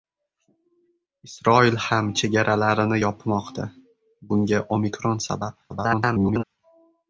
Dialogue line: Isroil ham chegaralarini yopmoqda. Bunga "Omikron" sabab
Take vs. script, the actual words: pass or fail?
fail